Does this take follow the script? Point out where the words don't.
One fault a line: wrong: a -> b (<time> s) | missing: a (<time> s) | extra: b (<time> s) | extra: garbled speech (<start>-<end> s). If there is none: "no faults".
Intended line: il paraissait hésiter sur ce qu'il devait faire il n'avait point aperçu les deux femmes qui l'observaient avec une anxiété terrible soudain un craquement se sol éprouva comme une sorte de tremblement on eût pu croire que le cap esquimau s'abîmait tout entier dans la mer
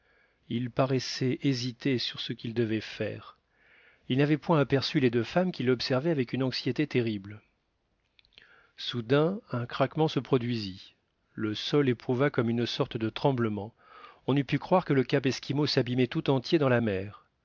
extra: produisit le (10.2 s)